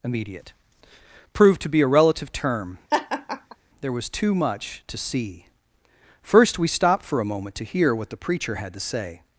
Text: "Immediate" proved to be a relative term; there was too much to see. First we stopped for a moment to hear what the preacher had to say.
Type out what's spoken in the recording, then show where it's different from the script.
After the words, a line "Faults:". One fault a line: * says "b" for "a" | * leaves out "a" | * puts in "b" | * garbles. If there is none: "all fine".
"Immediate" proved to be a relative term; there was too much to see. First we stopped for a moment to hear what the preacher had to say.
Faults:
all fine